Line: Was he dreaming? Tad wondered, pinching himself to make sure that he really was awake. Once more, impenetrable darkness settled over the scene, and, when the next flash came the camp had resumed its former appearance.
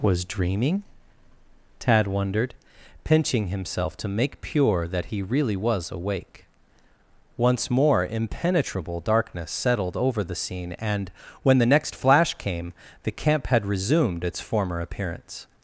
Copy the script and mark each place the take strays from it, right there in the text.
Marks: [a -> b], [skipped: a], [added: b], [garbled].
Was [skipped: he] dreaming? Tad wondered, pinching himself to make [sure -> pure] that he really was awake. Once more, impenetrable darkness settled over the scene, and, when the next flash came the camp had resumed its former appearance.